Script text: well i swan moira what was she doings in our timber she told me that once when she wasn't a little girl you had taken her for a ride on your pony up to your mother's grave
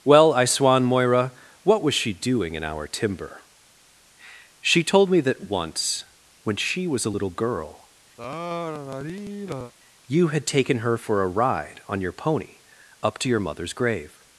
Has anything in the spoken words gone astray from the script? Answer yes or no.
yes